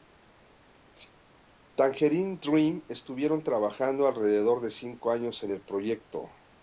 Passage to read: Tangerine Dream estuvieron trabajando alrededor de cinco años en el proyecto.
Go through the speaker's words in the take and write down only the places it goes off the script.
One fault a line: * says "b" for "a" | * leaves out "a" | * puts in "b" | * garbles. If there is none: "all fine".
all fine